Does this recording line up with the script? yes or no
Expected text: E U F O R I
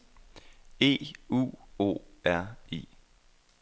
no